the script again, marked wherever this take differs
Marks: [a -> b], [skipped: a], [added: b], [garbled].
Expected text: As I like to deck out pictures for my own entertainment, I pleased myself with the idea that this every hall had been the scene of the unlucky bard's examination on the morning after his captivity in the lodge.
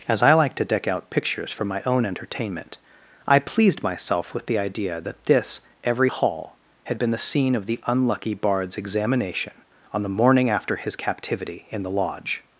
As I like to deck out pictures for my own entertainment, I pleased myself with the idea that this every hall had been the scene of the unlucky bard's examination on the morning after his captivity in the lodge.